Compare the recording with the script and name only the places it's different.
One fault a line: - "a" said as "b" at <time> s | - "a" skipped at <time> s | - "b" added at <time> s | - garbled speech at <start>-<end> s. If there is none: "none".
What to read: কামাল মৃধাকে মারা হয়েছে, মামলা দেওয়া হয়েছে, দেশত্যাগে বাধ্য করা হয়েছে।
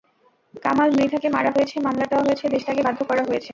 none